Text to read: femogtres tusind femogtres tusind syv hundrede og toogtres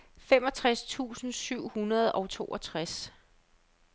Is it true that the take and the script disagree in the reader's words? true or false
true